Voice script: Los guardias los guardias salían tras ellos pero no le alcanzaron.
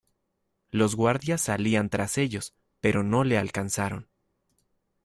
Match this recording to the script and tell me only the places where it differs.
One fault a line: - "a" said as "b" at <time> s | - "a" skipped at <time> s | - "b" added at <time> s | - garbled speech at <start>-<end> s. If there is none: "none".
- "los guardias" skipped at 1.4 s